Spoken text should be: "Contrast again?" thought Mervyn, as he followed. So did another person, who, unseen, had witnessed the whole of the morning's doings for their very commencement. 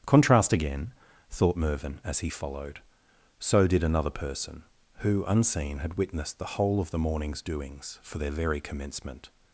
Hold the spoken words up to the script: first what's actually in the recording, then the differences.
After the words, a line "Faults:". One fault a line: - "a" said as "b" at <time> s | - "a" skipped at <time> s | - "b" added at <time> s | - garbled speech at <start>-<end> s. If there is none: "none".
"Contrast again?" thought Mervyn, as he followed. So did another person, who, unseen, had witnessed the whole of the morning's doings for their very commencement.
Faults:
none